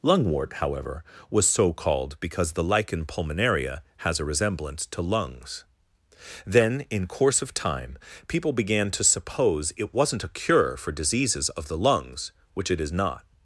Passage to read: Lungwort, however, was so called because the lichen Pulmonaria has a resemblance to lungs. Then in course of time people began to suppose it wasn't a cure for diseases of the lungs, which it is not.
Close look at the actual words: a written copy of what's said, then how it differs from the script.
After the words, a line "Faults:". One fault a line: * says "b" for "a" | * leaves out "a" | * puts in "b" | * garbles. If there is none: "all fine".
Lungwort, however, was so called because the lichen Pulmonaria has a resemblance to lungs. Then in course of time people began to suppose it wasn't a cure for diseases of the lungs, which it is not.
Faults:
all fine